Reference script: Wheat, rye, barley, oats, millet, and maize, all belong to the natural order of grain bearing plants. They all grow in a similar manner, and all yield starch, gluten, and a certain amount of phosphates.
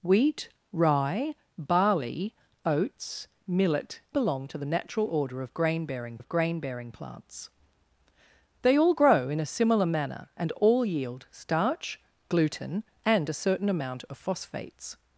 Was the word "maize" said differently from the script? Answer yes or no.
yes